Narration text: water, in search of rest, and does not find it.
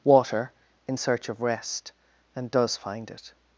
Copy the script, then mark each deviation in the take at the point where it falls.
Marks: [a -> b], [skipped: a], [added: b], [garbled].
water, in search of rest, and does [skipped: not] find it.